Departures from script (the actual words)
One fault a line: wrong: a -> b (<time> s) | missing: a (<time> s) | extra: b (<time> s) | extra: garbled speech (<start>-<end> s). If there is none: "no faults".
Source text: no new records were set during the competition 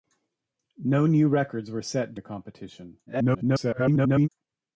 missing: during (2.1 s)
extra: garbled speech (3.1-4.3 s)